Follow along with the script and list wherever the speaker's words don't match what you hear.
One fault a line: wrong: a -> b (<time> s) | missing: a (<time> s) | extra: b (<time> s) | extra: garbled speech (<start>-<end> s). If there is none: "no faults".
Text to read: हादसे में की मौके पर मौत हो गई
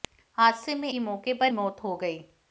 no faults